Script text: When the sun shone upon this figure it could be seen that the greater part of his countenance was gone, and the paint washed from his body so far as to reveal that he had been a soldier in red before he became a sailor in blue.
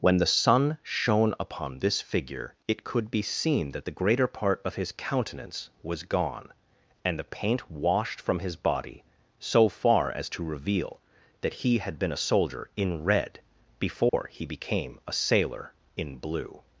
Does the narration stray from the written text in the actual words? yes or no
no